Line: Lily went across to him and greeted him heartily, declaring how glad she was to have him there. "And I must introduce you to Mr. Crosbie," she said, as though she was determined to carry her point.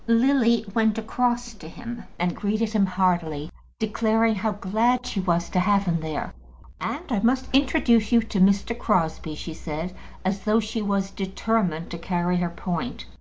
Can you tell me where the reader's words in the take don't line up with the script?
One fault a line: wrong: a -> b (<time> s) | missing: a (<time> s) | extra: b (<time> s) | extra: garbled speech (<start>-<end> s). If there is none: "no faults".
no faults